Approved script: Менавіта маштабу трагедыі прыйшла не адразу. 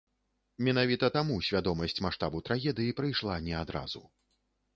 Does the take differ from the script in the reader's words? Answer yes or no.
yes